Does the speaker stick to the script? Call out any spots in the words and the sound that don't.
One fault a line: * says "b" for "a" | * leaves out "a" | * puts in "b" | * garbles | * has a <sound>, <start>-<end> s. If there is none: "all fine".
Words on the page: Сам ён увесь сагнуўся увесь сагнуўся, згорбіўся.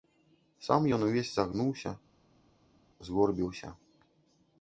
* leaves out "увесь сагнуўся"